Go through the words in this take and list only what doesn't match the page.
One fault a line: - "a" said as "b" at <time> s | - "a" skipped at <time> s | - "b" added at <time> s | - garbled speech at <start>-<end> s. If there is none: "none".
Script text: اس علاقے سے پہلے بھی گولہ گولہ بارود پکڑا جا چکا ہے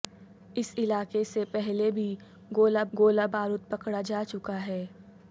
none